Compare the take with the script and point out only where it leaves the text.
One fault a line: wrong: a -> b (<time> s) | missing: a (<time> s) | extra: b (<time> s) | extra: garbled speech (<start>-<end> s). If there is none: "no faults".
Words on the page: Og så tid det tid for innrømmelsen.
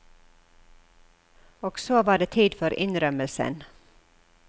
wrong: tid -> var (2.0 s)